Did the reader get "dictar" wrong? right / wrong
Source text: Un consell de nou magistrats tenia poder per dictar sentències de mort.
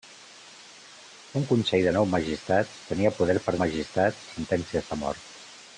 wrong